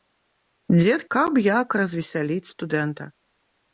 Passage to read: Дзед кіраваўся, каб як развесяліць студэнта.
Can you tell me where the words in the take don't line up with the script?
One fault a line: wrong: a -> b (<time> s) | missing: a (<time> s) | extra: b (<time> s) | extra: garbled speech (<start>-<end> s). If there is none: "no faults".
missing: кіраваўся (1.0 s)